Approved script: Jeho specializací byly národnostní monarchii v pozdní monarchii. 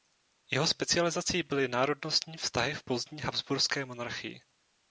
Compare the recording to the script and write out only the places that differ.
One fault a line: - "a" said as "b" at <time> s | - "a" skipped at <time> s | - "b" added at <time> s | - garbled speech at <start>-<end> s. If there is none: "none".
- "monarchii" said as "vztahy" at 2.4 s
- "habsburské" added at 3.2 s